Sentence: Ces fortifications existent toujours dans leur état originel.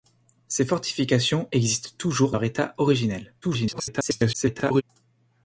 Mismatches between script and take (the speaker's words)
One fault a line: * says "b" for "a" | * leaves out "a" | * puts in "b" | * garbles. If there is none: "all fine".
* leaves out "dans"
* garbles